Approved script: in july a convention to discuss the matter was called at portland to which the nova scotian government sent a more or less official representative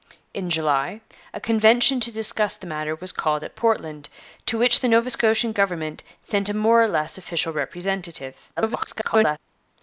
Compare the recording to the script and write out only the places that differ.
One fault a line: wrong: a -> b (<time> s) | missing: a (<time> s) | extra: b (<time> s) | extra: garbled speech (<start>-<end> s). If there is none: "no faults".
extra: garbled speech (8.6-9.4 s)